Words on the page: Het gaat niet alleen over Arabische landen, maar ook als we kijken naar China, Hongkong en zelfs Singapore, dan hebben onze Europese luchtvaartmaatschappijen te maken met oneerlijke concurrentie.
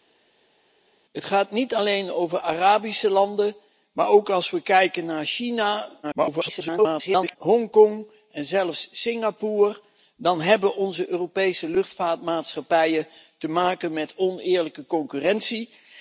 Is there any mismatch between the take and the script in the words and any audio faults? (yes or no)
yes